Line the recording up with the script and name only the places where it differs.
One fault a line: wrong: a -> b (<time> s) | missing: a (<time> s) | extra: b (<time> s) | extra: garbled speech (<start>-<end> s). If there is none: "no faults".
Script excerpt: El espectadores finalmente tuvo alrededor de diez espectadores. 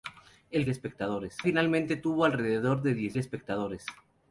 no faults